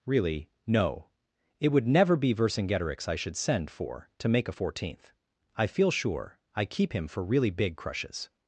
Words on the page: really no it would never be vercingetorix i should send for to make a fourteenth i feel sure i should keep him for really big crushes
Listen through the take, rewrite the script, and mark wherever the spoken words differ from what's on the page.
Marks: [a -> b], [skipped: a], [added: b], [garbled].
really no it would never be vercingetorix i should send for to make a fourteenth i feel sure i [skipped: should] keep him for really big crushes